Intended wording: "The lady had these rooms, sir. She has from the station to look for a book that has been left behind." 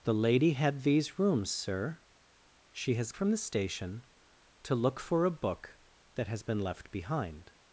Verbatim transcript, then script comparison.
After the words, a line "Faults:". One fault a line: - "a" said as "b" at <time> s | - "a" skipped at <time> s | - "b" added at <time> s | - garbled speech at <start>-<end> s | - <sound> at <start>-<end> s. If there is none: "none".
"The lady had these rooms, sir. She has from the station to look for a book that has been left behind."
Faults:
none